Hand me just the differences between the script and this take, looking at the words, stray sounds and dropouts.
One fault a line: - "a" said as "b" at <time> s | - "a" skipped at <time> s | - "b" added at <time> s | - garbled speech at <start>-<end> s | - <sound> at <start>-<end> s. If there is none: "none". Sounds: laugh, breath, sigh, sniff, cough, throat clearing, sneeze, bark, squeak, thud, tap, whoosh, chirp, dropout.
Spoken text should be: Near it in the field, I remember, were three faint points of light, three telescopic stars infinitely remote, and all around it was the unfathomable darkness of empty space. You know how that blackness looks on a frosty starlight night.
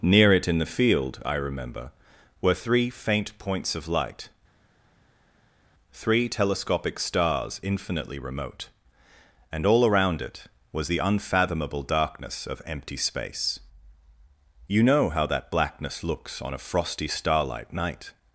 none